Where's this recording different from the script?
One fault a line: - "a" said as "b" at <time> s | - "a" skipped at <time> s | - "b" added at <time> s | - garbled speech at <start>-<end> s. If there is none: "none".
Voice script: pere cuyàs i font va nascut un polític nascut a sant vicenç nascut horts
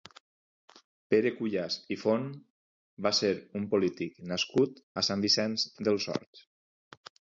- "nascut" said as "ser" at 3.2 s
- "nascut" said as "dels" at 5.9 s